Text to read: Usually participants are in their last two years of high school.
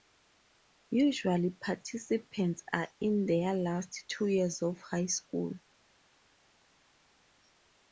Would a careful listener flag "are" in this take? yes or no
no